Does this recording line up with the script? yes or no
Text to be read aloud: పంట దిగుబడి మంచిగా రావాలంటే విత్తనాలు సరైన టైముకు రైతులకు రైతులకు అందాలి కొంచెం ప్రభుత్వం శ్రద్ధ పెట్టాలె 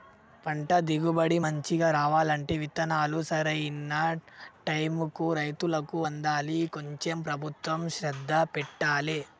no